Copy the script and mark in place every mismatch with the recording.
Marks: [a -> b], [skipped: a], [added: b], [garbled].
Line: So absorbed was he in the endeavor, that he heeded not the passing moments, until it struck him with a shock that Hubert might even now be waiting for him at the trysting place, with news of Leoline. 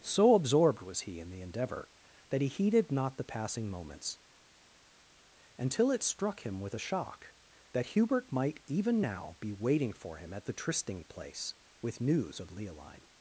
So absorbed was he in the endeavor, that he heeded not the passing moments, until it struck him with a shock that Hubert might even now be waiting for him at the trysting place, with news of Leoline.